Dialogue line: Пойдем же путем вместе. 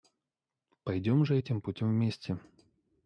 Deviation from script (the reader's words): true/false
true